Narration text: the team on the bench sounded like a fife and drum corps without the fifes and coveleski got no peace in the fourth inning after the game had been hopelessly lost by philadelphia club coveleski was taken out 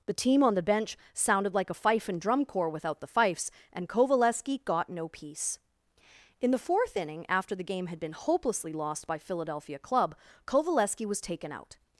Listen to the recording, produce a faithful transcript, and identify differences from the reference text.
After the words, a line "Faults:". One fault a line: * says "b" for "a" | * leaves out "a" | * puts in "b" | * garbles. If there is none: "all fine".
the team on the bench sounded like a fife and drum corps without the fifes and coveleski got no peace in the fourth inning after the game had been hopelessly lost by philadelphia club coveleski was taken out
Faults:
all fine